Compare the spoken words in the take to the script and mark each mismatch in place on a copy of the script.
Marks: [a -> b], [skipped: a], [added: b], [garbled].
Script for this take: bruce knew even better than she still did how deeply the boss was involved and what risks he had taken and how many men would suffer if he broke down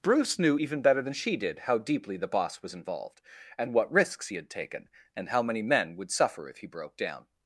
bruce knew even better than she [skipped: still] did how deeply the boss was involved and what risks he had taken and how many men would suffer if he broke down